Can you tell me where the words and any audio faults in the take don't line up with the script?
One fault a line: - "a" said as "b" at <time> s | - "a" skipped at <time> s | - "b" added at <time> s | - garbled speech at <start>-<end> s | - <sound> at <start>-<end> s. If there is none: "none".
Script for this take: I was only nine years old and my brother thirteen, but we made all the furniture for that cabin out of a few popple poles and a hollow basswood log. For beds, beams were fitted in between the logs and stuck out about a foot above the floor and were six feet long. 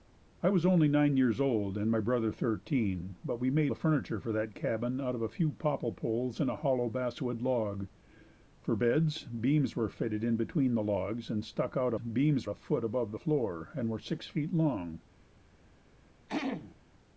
- "all" skipped at 3.7 s
- "about" said as "beams" at 12.0 s
- throat clearing at 16.3-16.8 s